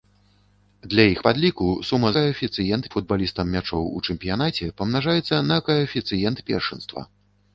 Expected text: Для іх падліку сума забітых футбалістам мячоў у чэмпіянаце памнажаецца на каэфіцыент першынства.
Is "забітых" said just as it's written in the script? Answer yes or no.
no